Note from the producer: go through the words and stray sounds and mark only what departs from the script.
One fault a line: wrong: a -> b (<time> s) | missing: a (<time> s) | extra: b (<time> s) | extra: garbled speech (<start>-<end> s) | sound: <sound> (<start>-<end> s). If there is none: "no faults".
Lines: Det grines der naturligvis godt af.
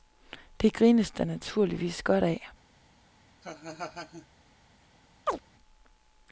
sound: laugh (3.4-4.3 s)
sound: chirp (5.3-5.4 s)